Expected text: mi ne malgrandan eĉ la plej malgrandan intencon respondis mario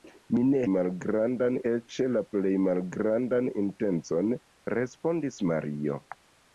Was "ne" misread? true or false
false